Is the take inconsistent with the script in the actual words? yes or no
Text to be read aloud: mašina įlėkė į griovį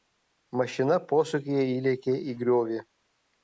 yes